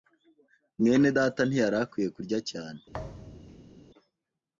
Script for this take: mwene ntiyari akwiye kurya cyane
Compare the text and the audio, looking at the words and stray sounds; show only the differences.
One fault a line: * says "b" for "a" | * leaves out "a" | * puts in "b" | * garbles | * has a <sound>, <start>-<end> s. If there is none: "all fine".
* puts in "data"
* has a thud, 2.9-3.7 s